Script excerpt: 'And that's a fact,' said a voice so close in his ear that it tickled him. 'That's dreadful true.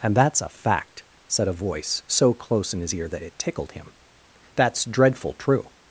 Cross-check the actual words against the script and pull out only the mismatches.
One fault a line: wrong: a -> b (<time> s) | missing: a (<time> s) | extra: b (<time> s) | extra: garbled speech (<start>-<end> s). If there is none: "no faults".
no faults